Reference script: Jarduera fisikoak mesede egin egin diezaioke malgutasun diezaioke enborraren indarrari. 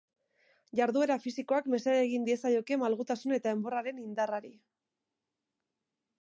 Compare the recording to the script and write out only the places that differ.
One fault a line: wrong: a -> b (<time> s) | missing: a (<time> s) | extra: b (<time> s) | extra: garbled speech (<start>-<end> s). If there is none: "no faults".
missing: egin (2.2 s)
wrong: diezaioke -> eta (3.4 s)